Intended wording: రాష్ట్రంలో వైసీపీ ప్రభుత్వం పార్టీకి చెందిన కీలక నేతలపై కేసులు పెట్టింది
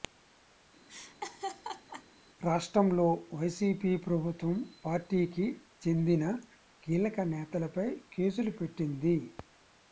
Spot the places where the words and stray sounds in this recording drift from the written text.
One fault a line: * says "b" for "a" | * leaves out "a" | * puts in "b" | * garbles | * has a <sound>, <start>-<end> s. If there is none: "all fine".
* has a laugh, 0.9-2.0 s